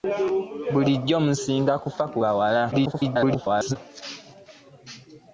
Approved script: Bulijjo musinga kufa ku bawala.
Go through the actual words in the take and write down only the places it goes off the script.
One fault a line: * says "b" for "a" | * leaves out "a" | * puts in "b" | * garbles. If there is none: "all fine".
* garbles